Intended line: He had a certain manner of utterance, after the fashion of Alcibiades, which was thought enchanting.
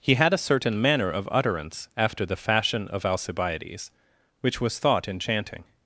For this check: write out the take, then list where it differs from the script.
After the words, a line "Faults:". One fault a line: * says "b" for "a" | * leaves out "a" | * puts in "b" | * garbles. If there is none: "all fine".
He had a certain manner of utterance, after the fashion of Alcibiades, which was thought enchanting.
Faults:
all fine